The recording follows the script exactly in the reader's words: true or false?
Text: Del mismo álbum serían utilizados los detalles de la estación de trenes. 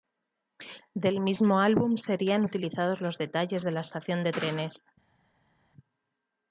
true